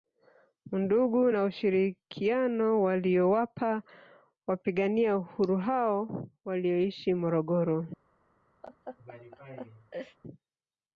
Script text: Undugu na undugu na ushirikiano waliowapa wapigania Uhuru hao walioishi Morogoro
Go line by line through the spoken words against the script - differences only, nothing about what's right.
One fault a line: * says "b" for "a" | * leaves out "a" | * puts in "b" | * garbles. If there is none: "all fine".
* leaves out "undugu na"